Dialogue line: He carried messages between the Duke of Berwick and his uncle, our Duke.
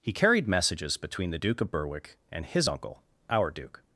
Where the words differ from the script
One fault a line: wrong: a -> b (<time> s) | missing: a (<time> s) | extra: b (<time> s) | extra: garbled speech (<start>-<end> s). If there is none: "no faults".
no faults